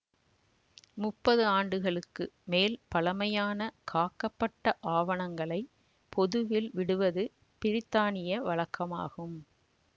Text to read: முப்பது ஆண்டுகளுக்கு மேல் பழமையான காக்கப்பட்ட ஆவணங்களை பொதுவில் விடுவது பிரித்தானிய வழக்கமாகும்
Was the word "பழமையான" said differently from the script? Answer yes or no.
no